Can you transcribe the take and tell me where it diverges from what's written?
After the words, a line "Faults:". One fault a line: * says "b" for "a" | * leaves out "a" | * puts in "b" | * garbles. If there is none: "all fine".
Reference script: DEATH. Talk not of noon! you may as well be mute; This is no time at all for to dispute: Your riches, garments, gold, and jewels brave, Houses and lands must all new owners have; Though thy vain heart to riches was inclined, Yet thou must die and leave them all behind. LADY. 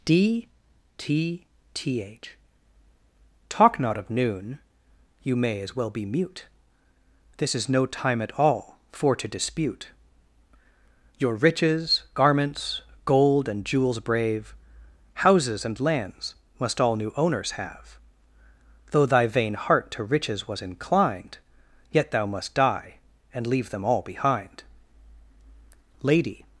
D t t h. Talk not of noon! you may as well be mute; This is no time at all for to dispute: Your riches, garments, gold, and jewels brave, Houses and lands must all new owners have; Though thy vain heart to riches was inclined, Yet thou must die and leave them all behind. LADY.
Faults:
* says "D t t h" for "DEATH"